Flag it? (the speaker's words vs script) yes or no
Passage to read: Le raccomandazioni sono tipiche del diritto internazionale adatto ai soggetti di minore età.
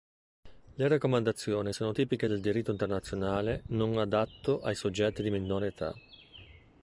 yes